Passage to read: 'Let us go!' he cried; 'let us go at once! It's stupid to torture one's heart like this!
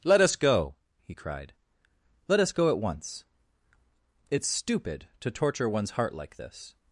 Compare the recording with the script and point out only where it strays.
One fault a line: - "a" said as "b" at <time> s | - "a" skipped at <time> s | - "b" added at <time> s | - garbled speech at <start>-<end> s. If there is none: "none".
none